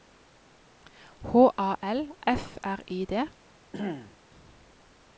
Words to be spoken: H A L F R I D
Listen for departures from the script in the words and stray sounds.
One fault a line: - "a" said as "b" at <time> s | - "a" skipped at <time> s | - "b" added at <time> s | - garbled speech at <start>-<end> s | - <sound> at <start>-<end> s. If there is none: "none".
- throat clearing at 3.7-4.2 s